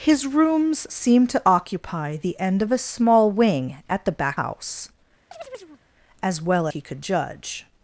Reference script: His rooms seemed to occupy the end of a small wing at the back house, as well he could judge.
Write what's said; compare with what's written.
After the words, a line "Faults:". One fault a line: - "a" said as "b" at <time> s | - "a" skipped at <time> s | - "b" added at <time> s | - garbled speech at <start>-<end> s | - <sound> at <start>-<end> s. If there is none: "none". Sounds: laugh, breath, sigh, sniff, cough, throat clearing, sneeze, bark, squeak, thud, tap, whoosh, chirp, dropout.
His rooms seemed to occupy the end of a small wing at the back house, as well he could judge.
Faults:
- chirp at 5.3-5.8 s